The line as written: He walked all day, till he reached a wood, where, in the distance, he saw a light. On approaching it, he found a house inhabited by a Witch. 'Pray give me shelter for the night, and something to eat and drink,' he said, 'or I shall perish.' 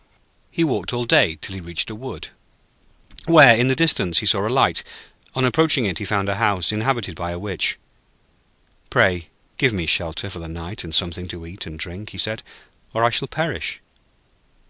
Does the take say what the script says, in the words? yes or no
yes